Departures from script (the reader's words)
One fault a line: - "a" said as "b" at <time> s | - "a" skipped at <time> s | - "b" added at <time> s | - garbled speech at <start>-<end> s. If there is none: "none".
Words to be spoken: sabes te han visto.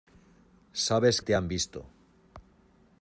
none